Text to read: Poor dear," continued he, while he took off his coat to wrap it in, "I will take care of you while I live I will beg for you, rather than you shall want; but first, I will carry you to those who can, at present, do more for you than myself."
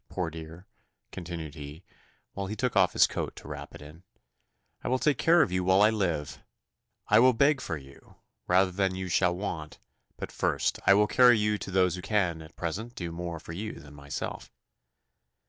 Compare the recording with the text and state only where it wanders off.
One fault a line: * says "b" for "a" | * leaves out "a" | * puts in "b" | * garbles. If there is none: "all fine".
all fine